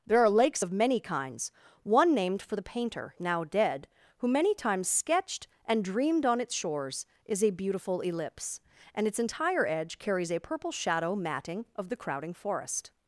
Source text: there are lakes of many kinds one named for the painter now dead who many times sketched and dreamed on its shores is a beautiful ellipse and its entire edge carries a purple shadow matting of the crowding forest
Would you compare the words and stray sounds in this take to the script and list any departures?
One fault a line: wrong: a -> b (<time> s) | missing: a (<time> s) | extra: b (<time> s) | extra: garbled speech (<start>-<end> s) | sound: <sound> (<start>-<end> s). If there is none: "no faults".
no faults